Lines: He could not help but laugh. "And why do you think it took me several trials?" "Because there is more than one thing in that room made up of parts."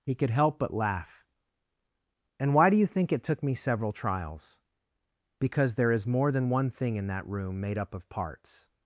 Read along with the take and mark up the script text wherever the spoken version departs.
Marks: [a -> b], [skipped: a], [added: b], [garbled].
He could [skipped: not] help but laugh. "And why do you think it took me several trials?" "Because there is more than one thing in that room made up of parts."